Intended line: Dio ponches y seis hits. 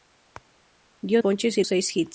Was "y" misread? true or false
false